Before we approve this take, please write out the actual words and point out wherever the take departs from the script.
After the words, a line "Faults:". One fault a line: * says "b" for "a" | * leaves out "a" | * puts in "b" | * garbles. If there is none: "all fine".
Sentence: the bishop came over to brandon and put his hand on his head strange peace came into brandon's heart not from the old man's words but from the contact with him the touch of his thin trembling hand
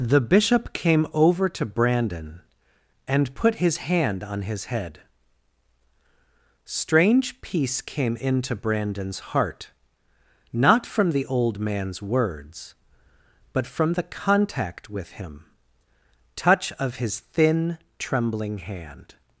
the bishop came over to brandon and put his hand on his head strange peace came into brandon's heart not from the old man's words but from the contact with him touch of his thin trembling hand
Faults:
* leaves out "the"